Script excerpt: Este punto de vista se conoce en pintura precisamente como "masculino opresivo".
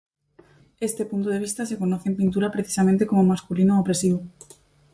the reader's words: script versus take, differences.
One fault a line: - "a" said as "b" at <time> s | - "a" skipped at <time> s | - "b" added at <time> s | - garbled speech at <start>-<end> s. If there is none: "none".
none